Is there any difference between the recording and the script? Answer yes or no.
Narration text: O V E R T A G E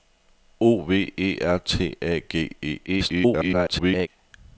yes